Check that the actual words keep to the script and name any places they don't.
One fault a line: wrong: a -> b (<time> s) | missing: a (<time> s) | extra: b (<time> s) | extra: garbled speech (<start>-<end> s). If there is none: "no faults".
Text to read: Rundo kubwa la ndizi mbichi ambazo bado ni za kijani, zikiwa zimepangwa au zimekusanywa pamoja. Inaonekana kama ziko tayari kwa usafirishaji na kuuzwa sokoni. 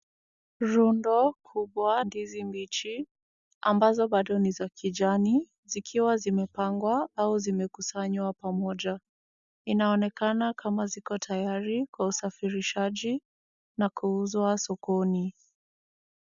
missing: la (2.0 s)